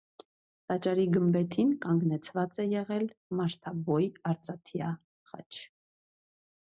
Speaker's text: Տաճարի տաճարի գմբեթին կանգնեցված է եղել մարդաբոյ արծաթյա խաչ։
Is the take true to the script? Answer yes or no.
no